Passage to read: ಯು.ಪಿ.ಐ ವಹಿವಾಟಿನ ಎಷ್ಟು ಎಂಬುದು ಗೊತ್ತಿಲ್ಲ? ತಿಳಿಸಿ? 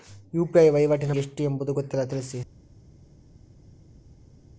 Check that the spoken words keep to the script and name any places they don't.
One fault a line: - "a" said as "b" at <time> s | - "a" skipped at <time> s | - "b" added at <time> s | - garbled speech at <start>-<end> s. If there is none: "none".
none